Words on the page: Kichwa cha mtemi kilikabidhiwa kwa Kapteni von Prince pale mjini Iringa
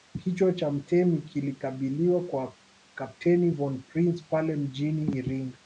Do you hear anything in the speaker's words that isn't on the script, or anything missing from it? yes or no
no